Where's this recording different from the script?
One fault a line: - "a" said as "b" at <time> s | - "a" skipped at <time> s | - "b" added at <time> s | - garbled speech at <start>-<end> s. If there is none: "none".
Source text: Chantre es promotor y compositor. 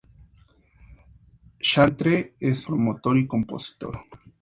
none